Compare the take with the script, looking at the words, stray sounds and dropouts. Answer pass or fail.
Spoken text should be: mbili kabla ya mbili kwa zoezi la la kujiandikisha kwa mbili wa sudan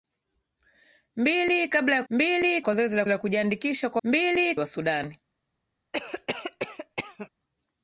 fail